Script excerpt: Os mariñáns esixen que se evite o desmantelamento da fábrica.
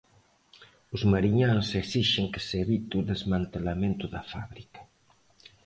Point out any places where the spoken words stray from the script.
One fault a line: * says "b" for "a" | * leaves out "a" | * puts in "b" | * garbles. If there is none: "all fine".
all fine